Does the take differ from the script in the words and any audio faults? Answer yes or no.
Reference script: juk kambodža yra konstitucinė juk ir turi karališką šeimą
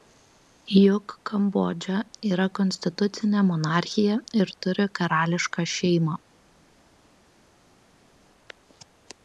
yes